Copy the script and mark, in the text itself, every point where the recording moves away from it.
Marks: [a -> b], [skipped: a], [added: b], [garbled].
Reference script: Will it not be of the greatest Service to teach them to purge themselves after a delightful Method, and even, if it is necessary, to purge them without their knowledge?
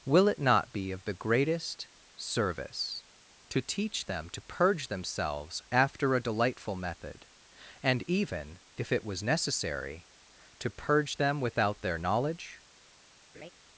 Will it not be of the greatest Service to teach them to purge themselves after a delightful Method, and even, if it [is -> was] necessary, to purge them without their knowledge?